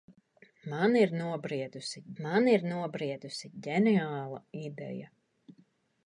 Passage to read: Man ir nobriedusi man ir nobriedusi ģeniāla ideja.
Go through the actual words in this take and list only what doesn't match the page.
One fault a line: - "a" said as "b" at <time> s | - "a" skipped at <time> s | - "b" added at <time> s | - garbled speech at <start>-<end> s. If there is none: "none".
none